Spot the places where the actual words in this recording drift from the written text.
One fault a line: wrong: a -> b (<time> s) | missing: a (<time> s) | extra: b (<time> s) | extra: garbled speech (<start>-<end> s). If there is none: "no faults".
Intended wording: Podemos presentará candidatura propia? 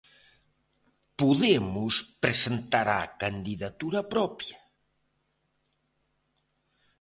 no faults